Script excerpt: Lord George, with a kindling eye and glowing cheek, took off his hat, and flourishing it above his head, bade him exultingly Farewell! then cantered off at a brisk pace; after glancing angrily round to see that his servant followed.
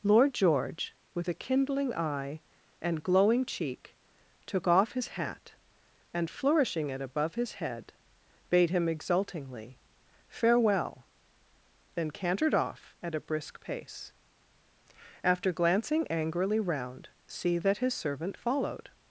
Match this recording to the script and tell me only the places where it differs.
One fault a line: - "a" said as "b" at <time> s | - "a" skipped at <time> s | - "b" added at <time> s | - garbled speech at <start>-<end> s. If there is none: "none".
- "to" skipped at 17.1 s